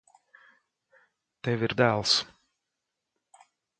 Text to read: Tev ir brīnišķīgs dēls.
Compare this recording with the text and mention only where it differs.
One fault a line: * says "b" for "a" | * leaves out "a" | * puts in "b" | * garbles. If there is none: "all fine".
* leaves out "brīnišķīgs"